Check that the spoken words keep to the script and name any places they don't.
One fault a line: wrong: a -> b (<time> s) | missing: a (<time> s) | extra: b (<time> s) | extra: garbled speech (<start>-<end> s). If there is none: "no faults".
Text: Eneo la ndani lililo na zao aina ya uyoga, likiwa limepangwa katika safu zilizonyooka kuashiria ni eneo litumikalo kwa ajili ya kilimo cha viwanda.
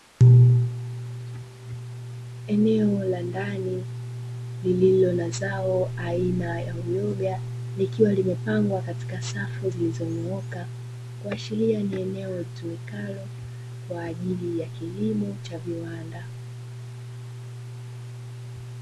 no faults